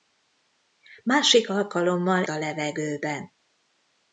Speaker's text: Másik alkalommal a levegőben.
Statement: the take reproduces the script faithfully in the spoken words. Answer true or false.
true